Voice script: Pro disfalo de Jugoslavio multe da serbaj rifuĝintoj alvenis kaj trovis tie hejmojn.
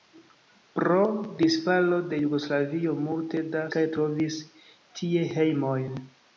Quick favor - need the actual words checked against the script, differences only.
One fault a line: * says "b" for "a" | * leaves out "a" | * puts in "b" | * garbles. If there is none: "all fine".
* leaves out "serbaj rifuĝintoj alvenis"